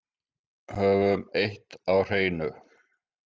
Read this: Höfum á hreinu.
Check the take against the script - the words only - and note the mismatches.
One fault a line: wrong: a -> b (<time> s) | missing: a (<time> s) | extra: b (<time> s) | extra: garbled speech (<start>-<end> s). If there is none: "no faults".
extra: eitt (1.4 s)